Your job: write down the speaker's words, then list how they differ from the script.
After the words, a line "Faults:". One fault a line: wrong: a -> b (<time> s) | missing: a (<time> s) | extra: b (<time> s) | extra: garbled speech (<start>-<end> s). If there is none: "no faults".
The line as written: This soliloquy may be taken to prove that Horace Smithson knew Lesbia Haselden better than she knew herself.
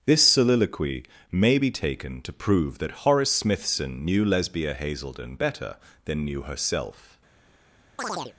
This soliloquy may be taken to prove that Horace Smithson knew Lesbia Haselden better than knew herself.
Faults:
missing: she (6.2 s)